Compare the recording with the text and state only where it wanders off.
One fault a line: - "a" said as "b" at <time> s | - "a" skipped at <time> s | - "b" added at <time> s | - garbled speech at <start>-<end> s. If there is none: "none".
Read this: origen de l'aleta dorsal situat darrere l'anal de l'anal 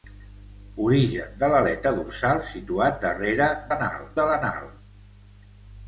none